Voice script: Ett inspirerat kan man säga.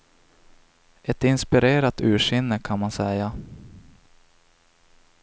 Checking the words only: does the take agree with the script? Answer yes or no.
no